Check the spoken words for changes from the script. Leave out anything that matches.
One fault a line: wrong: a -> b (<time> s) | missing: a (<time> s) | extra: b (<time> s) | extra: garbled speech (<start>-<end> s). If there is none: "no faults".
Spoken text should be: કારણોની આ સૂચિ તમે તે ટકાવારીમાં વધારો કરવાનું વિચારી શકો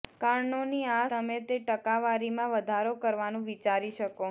missing: સૂચિ (1.0 s)